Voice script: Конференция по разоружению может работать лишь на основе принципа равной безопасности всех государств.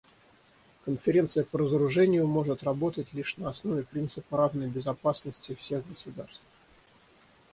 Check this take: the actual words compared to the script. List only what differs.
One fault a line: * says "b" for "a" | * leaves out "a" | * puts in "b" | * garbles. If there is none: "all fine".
all fine